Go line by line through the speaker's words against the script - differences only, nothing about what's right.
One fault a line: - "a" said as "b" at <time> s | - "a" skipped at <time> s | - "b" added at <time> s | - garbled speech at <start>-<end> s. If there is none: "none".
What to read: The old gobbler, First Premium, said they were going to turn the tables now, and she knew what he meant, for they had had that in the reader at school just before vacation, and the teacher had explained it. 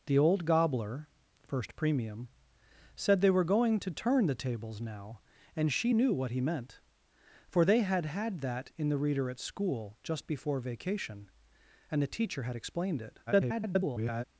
- garbled speech at 13.3-14.2 s